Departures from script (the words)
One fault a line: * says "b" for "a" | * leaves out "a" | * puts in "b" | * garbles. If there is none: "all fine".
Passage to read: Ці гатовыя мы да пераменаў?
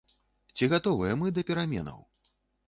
all fine